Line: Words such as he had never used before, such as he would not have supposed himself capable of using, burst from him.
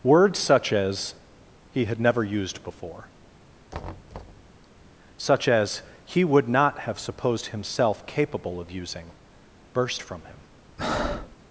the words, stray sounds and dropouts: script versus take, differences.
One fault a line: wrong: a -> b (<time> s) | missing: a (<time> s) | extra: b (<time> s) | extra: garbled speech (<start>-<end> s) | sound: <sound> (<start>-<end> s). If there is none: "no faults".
sound: thud (3.7-4.5 s)
sound: breath (10.8-11.4 s)